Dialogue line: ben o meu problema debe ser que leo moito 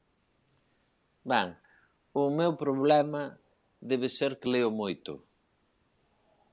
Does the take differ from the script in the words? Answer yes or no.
no